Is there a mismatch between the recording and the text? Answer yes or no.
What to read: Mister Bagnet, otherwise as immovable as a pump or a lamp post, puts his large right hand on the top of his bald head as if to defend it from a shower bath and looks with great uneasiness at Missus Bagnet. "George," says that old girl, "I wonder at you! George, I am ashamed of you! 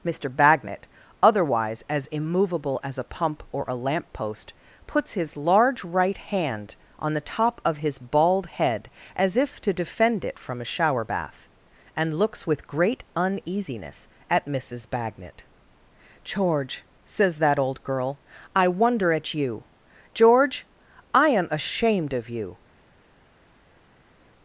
no